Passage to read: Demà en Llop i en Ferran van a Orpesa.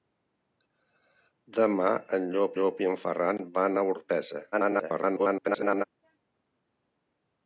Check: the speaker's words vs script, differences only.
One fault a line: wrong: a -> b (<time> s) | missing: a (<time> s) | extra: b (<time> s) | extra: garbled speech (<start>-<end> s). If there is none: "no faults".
extra: Llop (2.6 s)
extra: garbled speech (4.5-5.8 s)